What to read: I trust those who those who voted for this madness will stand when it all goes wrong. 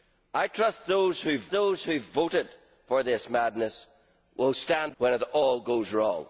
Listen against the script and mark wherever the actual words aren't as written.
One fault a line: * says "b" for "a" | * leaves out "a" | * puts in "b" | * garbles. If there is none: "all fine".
all fine